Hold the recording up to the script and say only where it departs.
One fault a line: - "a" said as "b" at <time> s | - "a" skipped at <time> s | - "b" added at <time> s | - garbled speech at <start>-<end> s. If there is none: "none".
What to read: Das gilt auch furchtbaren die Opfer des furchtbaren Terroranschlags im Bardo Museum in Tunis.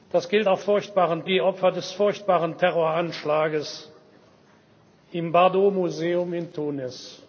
none